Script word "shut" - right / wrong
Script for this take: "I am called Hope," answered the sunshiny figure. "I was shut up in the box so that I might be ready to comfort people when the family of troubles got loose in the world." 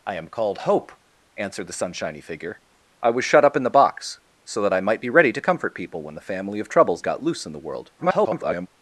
right